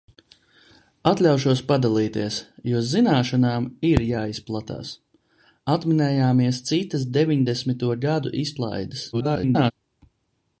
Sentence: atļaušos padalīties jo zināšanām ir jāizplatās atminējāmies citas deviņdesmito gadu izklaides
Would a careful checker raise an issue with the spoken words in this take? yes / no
yes